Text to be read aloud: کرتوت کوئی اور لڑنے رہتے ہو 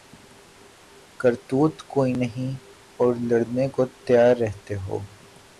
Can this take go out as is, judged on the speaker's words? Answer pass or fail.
fail